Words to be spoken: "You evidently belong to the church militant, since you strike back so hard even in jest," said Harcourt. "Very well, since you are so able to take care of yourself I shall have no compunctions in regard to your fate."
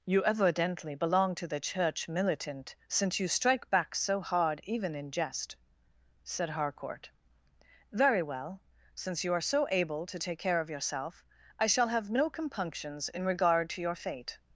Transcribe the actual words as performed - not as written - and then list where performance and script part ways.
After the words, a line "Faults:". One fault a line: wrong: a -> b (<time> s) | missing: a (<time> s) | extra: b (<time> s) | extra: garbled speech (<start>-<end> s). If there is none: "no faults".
"You evidently belong to the church militant, since you strike back so hard even in jest," said Harcourt. "Very well, since you are so able to take care of yourself I shall have no compunctions in regard to your fate."
Faults:
no faults